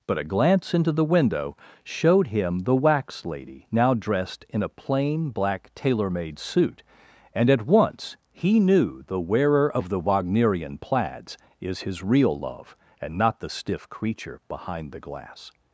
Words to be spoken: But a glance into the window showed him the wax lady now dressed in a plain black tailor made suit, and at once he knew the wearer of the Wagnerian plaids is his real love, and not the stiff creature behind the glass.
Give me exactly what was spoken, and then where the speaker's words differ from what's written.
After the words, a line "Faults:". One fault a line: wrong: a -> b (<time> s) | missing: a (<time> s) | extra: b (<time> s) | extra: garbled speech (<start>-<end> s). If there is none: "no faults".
But a glance into the window showed him the wax lady now dressed in a plain black tailor made suit, and at once he knew the wearer of the Wagnerian plaids is his real love, and not the stiff creature behind the glass.
Faults:
no faults